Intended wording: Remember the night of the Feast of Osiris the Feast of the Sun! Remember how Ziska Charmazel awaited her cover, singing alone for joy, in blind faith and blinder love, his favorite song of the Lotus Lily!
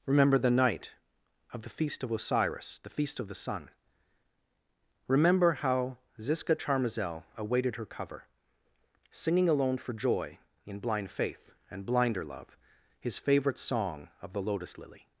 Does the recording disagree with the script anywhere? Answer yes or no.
no